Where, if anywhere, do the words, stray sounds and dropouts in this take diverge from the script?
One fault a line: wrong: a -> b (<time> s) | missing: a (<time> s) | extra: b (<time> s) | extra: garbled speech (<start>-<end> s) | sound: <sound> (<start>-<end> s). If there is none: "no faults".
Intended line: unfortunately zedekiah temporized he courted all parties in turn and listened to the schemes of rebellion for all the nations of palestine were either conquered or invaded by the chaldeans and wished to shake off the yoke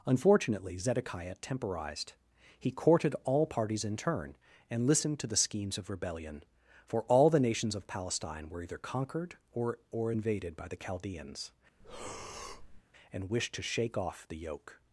extra: or (9.9 s)
sound: breath (11.8-12.8 s)